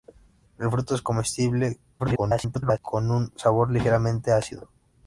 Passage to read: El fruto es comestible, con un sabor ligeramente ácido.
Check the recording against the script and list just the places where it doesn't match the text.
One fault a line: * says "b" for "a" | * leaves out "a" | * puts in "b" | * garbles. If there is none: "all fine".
* garbles